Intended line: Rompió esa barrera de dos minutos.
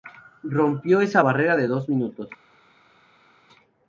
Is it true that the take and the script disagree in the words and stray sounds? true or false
false